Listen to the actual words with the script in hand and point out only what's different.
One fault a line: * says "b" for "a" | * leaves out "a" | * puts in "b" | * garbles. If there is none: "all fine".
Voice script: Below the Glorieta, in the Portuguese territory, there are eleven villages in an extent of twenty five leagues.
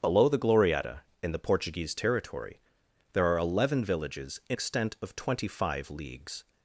* leaves out "an"